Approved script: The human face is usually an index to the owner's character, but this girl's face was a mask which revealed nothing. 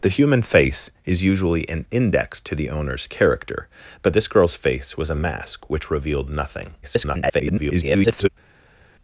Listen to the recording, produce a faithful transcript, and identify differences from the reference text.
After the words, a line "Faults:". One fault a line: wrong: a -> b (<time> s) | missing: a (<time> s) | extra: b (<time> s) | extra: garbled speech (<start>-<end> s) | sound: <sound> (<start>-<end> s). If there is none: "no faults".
The human face is usually an index to the owner's character, but this girl's face was a mask which revealed nothing. [garbled]
Faults:
extra: garbled speech (6.8-8.3 s)